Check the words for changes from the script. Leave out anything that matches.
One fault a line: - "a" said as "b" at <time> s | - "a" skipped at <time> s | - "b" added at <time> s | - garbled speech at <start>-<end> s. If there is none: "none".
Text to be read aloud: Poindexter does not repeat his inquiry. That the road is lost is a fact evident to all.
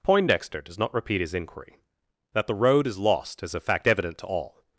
none